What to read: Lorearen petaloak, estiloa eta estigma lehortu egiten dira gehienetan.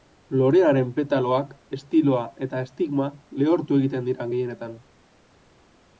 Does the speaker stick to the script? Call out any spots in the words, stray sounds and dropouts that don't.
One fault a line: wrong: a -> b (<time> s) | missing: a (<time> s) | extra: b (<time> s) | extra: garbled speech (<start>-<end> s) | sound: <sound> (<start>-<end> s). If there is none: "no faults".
no faults